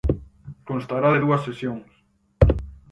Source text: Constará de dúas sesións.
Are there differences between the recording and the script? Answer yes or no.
no